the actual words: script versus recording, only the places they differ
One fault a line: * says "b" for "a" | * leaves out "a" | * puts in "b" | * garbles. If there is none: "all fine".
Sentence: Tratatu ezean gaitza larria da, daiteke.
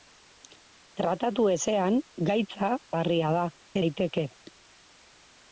all fine